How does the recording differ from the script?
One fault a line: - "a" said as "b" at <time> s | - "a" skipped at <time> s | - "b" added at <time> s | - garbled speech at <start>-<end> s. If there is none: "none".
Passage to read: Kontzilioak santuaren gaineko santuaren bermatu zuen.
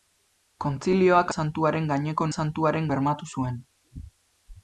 none